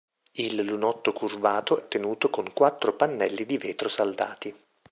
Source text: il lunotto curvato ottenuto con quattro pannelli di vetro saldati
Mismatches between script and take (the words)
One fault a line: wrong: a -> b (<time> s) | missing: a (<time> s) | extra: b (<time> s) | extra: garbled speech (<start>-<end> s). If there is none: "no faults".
no faults